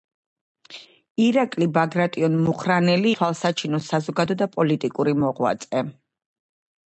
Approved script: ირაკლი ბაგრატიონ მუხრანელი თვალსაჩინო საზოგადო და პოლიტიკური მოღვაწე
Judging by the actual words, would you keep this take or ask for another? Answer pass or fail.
pass